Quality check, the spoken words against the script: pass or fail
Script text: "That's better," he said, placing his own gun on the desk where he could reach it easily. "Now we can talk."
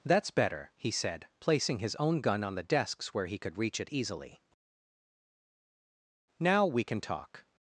fail